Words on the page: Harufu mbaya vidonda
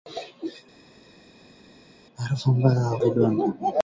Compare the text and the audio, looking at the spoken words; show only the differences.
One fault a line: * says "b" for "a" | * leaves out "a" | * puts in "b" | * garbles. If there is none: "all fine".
all fine